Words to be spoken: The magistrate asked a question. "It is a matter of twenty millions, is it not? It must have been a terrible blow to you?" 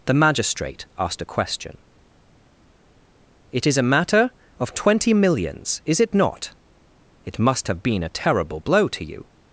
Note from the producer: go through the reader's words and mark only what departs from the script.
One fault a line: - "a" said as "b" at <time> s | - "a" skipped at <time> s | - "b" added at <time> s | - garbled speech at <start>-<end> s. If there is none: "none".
none